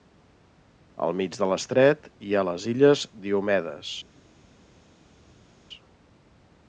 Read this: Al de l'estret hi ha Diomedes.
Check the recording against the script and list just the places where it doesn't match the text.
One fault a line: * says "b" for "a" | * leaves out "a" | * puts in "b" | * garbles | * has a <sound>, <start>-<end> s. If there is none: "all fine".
* puts in "mig"
* puts in "les Illes"